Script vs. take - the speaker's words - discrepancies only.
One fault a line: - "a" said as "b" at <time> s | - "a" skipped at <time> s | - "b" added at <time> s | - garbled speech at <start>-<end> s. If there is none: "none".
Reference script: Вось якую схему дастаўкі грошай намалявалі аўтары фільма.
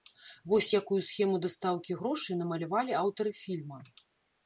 none